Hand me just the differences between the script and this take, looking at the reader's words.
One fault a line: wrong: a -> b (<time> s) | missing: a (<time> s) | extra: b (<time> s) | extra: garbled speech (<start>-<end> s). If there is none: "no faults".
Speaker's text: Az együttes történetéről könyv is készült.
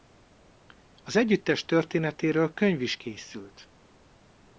no faults